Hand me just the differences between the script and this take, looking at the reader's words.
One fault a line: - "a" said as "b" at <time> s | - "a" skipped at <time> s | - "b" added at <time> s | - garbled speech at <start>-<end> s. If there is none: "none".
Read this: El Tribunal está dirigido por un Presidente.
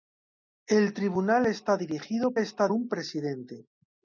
- "por" said as "está" at 2.4 s